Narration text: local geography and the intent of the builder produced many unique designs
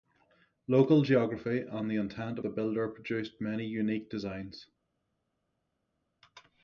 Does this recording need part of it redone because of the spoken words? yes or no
yes